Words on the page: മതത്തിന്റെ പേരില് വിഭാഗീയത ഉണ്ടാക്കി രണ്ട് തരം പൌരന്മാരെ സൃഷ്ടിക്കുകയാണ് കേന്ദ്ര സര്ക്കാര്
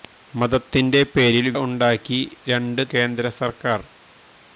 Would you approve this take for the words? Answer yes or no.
no